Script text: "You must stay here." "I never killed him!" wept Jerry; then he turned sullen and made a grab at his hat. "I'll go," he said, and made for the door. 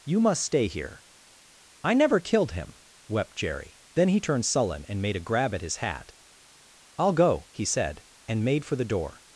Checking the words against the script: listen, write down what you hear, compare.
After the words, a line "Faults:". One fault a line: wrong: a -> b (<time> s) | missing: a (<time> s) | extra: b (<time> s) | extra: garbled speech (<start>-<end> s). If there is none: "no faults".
"You must stay here." "I never killed him!" wept Jerry; then he turned sullen and made a grab at his hat. "I'll go," he said, and made for the door.
Faults:
no faults